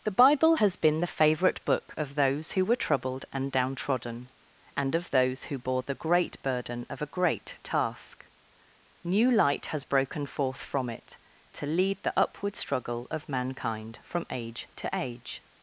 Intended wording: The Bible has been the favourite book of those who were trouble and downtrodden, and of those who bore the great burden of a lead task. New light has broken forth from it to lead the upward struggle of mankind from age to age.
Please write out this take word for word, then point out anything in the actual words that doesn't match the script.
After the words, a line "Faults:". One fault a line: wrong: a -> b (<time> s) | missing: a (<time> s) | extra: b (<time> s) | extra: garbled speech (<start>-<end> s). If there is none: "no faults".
The Bible has been the favourite book of those who were troubled and downtrodden, and of those who bore the great burden of a great task. New light has broken forth from it to lead the upward struggle of mankind from age to age.
Faults:
wrong: trouble -> troubled (2.8 s)
wrong: lead -> great (7.1 s)